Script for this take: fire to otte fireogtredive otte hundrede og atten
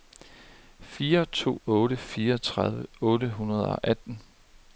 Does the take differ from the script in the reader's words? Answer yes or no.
no